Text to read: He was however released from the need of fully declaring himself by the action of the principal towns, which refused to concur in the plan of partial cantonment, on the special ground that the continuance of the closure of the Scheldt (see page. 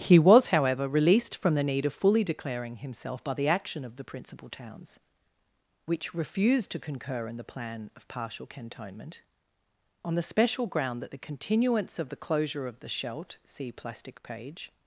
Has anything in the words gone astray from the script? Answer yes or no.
yes